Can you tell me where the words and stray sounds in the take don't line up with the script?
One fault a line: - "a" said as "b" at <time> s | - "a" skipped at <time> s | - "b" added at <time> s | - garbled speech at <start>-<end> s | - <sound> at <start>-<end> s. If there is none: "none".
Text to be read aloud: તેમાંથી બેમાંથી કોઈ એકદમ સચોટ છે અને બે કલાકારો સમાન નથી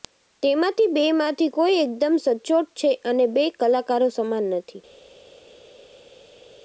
none